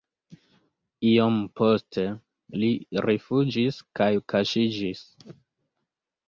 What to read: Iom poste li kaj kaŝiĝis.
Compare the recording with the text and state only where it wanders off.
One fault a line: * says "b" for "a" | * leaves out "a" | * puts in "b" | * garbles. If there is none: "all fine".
* puts in "rifuĝis"